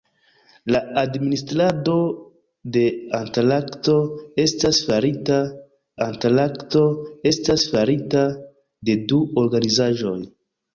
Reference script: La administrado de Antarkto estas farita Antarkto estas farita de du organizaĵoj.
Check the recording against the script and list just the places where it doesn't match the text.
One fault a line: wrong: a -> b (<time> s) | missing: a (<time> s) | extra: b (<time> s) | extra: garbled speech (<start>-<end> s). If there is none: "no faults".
no faults